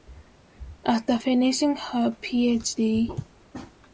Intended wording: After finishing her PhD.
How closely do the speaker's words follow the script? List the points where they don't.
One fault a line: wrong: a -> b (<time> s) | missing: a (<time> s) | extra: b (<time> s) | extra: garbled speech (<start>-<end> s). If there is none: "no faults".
no faults